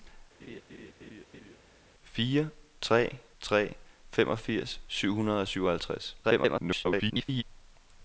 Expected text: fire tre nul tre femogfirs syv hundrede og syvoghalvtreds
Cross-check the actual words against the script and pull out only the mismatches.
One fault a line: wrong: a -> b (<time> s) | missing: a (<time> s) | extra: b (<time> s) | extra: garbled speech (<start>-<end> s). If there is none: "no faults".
missing: nul (3.2 s)
extra: garbled speech (6.2-7.4 s)